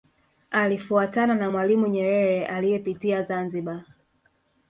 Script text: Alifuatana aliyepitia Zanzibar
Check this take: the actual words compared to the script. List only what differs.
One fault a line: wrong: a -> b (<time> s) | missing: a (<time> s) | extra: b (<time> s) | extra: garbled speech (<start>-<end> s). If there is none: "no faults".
extra: na Mwalimu Nyerere (1.4 s)